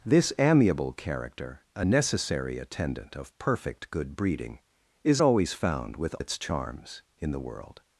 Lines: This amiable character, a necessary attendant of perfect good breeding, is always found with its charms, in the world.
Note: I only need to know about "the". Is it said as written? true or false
true